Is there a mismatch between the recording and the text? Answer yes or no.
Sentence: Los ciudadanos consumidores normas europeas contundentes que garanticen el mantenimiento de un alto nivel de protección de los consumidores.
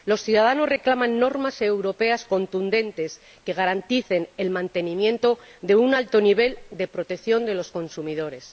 yes